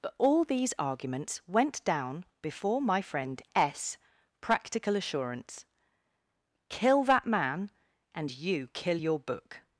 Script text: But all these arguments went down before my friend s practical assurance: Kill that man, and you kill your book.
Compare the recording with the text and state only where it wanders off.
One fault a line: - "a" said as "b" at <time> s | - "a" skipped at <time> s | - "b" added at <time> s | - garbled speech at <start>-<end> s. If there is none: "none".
none